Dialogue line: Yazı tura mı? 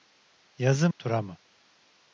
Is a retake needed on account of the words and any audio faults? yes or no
no